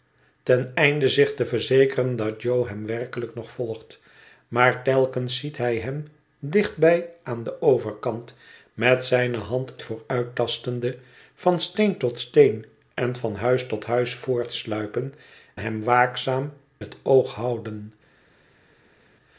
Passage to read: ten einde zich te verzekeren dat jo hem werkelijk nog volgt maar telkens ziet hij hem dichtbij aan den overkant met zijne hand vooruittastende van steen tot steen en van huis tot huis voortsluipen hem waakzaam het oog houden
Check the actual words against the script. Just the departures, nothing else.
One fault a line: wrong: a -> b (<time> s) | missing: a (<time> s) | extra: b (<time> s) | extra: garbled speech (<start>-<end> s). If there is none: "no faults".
no faults